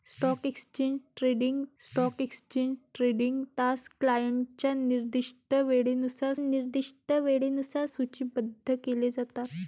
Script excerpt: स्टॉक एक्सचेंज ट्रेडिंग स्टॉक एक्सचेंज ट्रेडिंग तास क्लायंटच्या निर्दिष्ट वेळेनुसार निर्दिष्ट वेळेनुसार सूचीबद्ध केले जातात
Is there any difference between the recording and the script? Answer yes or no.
no